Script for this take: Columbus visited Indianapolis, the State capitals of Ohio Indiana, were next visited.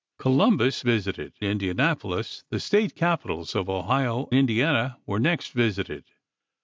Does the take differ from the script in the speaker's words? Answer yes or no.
no